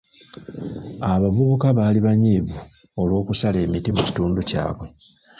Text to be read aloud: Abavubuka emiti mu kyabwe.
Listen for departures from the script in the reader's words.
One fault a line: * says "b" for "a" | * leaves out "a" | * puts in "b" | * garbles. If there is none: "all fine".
* puts in "baali banyiivu olw'okusala"
* puts in "kitundu"